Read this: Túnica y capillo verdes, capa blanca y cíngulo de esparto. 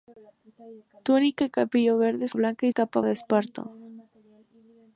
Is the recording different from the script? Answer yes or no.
yes